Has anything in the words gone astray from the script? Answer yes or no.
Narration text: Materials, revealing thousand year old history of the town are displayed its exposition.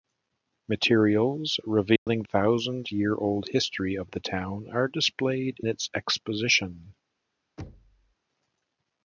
no